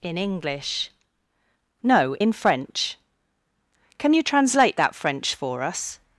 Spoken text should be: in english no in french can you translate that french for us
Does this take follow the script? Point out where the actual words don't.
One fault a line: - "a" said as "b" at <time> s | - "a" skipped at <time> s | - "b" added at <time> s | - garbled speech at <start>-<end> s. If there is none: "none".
none